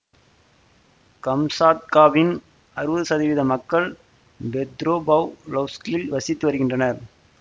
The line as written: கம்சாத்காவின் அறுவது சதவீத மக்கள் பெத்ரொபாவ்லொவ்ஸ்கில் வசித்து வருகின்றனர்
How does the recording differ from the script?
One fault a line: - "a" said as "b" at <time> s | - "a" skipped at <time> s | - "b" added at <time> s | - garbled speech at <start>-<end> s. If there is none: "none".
none